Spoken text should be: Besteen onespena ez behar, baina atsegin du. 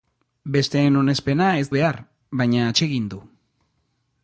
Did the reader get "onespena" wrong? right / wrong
right